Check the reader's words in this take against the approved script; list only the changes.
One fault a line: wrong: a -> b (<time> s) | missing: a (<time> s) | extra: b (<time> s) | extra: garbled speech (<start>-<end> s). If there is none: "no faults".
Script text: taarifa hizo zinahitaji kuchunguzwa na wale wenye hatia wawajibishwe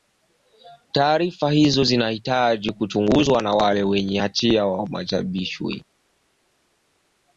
no faults